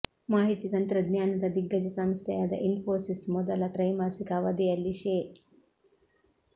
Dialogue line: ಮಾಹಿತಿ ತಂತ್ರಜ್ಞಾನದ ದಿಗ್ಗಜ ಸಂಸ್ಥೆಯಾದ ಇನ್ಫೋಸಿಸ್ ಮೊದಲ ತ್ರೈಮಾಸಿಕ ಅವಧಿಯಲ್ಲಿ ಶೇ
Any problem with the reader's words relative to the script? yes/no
no